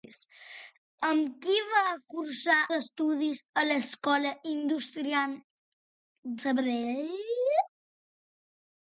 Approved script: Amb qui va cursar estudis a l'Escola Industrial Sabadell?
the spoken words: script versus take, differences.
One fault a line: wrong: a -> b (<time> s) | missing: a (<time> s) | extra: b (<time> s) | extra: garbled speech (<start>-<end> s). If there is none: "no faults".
no faults